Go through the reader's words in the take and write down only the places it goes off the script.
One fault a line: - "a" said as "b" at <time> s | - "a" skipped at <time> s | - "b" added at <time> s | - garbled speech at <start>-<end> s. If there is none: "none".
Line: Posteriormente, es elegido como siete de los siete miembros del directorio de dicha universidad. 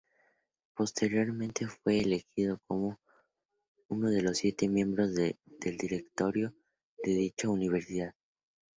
- "es" said as "fue" at 1.7 s
- "siete" said as "uno" at 3.9 s